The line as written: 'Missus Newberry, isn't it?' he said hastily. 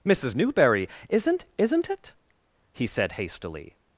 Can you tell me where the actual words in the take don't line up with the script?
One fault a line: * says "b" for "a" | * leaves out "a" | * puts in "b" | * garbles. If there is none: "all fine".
* puts in "isn't"